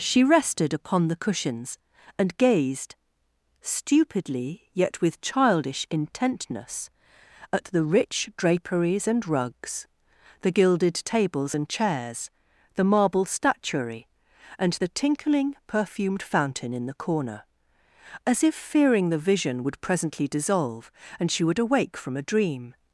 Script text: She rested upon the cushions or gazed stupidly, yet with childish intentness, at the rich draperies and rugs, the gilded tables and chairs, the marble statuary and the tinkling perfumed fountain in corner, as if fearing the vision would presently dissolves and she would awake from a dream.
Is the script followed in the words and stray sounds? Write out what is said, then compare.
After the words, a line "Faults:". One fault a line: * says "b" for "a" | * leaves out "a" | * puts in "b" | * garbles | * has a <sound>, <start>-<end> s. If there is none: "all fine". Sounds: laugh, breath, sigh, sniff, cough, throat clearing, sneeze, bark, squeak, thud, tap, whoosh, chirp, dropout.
She rested upon the cushions and gazed stupidly, yet with childish intentness, at the rich draperies and rugs, the gilded tables and chairs, the marble statuary and the tinkling perfumed fountain in the corner, as if fearing the vision would presently dissolve and she would awake from a dream.
Faults:
* says "and" for "or"
* puts in "the"
* says "dissolve" for "dissolves"